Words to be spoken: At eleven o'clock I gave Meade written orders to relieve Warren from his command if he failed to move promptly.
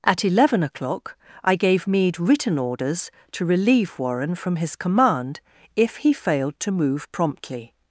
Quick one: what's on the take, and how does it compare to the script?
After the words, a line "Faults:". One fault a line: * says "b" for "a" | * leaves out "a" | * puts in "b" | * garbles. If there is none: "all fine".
At eleven o'clock I gave Meade written orders to relieve Warren from his command if he failed to move promptly.
Faults:
all fine